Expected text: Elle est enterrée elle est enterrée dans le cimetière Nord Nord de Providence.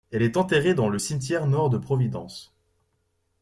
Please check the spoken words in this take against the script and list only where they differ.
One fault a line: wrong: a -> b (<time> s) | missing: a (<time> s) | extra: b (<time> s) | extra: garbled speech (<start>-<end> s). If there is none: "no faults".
missing: elle est enterrée (0.7 s)
missing: Nord (1.7 s)